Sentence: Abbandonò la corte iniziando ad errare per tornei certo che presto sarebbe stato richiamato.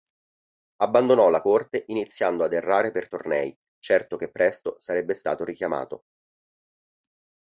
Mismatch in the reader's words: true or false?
false